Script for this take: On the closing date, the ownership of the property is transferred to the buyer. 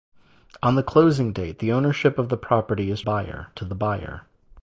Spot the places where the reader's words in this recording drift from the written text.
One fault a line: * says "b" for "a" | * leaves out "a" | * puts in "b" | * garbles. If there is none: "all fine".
* says "buyer" for "transferred"